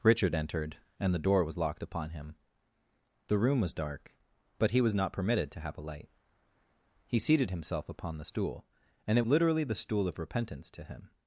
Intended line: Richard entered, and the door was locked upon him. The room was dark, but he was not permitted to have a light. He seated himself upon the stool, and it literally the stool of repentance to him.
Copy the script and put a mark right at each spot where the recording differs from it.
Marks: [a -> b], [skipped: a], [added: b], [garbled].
Richard entered, and the door was locked upon him. The room was dark, but he was not permitted to have a light. He seated himself upon the stool, and it literally the stool of repentance to him.